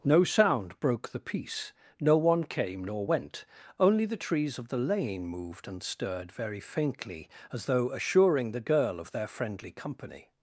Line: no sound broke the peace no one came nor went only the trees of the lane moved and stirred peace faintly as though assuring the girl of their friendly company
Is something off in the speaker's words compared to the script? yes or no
yes